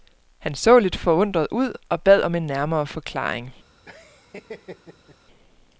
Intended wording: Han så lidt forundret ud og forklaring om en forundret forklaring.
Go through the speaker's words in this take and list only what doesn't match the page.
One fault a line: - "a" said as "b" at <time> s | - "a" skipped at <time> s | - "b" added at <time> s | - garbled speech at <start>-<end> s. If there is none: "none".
- "forklaring" said as "bad" at 2.0 s
- "forundret" said as "nærmere" at 2.5 s